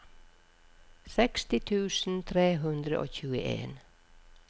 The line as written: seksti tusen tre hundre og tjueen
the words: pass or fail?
pass